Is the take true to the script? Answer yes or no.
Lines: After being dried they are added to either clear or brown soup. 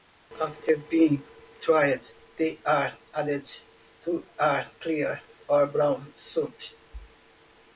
no